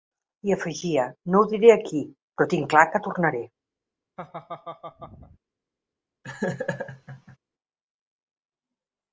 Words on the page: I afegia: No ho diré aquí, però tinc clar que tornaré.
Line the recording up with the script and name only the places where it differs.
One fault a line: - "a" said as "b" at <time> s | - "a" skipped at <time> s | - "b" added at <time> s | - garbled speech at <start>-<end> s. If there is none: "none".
none